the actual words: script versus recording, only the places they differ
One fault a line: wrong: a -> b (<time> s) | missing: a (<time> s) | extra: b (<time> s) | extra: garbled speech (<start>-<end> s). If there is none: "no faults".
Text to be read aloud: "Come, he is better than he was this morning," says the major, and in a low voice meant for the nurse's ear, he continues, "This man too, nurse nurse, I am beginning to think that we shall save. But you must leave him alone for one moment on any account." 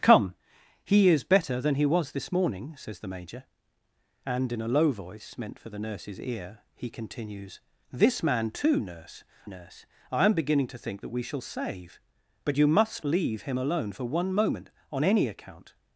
no faults